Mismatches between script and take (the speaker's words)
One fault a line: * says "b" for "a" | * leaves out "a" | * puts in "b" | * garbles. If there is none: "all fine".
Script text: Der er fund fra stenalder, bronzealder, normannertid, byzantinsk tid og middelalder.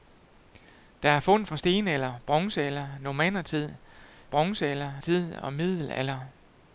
* says "bronzealder" for "byzantinsk"